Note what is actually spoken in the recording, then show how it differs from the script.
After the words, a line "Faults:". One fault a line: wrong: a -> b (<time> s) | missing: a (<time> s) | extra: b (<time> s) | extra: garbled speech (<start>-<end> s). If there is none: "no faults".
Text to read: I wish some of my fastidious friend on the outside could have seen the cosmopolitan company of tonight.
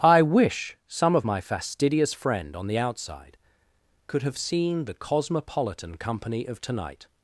I wish some of my fastidious friend on the outside could have seen the cosmopolitan company of tonight.
Faults:
no faults